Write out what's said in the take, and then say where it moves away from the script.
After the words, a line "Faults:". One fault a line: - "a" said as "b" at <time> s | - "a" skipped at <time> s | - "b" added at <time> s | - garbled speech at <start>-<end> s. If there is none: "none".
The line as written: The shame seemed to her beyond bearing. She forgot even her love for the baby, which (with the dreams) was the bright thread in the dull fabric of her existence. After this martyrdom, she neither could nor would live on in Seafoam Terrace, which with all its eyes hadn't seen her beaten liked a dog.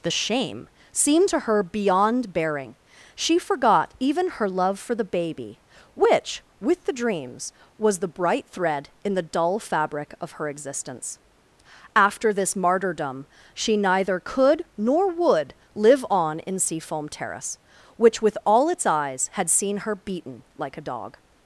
The shame seemed to her beyond bearing. She forgot even her love for the baby, which (with the dreams) was the bright thread in the dull fabric of her existence. After this martyrdom, she neither could nor would live on in Seafoam Terrace, which with all its eyes had seen her beaten like a dog.
Faults:
- "hadn't" said as "had" at 19.3 s
- "liked" said as "like" at 20.6 s